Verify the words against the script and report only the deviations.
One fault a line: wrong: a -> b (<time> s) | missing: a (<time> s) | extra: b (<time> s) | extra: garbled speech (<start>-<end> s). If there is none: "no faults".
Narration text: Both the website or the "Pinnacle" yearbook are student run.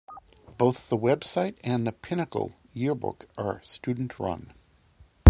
wrong: or -> and (1.6 s)